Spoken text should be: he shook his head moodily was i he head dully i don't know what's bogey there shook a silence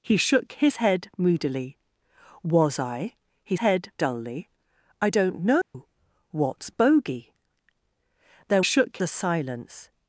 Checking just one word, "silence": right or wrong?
right